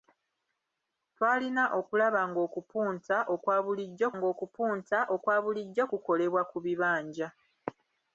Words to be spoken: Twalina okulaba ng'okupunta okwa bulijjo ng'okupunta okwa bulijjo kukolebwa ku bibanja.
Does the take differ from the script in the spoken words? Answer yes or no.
no